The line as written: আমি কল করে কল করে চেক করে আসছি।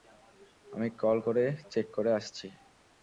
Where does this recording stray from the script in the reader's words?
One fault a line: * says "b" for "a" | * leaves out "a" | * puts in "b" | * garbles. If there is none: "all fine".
* leaves out "কল করে"